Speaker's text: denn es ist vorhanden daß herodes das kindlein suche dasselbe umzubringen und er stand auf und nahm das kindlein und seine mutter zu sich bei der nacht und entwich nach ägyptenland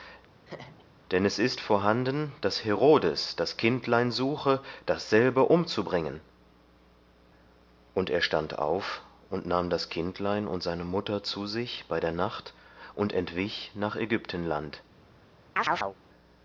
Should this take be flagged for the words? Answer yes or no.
no